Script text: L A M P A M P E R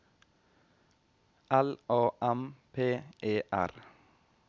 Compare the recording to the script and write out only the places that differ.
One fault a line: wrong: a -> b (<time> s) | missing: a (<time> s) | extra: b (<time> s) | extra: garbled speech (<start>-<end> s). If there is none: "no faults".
missing: A M P (3.0 s)